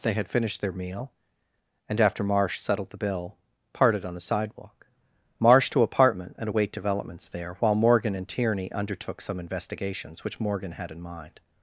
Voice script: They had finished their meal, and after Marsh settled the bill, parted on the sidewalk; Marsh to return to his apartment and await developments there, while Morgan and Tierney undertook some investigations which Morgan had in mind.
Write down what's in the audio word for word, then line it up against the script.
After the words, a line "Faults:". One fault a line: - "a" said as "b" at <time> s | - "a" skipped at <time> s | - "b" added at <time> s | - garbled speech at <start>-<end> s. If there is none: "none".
They had finished their meal, and after Marsh settled the bill, parted on the sidewalk; Marsh to apartment and await developments there, while Morgan and Tierney undertook some investigations which Morgan had in mind.
Faults:
- "return to his" skipped at 5.8 s